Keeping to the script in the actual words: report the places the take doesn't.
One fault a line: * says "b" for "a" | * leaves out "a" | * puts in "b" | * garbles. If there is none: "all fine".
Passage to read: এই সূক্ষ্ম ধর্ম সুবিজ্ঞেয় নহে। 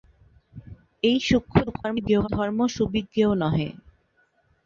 * garbles